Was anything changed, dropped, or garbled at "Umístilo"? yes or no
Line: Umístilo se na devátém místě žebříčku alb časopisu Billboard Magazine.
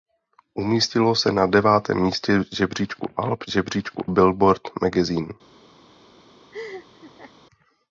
no